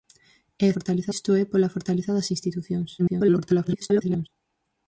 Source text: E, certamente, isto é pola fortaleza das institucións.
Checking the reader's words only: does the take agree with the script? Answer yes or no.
no